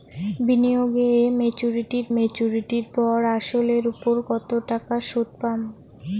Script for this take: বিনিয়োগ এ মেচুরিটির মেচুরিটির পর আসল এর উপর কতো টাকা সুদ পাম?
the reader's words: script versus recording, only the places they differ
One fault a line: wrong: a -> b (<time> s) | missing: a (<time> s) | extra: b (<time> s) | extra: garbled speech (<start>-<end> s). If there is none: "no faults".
no faults